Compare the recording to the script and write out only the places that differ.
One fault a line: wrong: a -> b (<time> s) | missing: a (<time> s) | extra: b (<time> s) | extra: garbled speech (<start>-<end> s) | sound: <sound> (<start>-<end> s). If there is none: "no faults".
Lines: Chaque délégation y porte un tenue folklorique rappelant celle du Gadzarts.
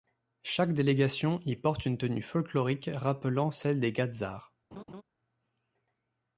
wrong: un -> une (1.9 s)
wrong: du -> des (3.8 s)
sound: laugh (4.7-5.0 s)